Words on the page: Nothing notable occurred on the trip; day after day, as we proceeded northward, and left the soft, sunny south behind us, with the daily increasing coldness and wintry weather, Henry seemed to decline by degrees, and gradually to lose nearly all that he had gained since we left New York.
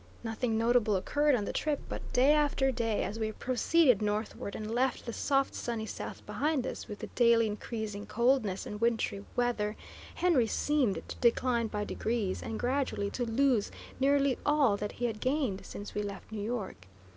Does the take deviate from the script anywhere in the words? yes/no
yes